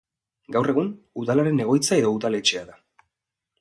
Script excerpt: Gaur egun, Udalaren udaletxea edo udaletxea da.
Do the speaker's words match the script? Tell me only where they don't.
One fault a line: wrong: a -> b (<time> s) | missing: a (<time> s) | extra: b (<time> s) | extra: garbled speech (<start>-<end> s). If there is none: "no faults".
wrong: udaletxea -> egoitza (1.7 s)